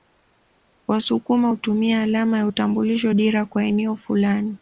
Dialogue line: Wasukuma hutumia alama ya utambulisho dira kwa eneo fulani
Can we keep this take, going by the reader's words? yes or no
yes